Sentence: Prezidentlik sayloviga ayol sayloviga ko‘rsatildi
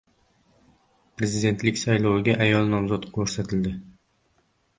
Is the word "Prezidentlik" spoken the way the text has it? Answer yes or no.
yes